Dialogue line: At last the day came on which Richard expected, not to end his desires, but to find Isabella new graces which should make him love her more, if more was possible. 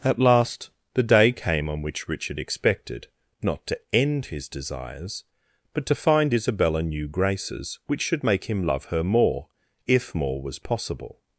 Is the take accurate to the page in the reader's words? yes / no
yes